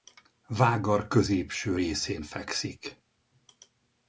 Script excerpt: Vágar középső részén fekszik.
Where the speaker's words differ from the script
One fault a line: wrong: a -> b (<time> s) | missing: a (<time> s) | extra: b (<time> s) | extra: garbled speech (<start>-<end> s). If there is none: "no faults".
no faults